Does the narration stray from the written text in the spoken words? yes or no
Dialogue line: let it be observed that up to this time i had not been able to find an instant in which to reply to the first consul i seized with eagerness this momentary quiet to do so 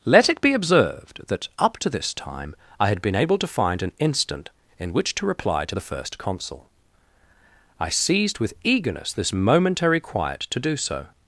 yes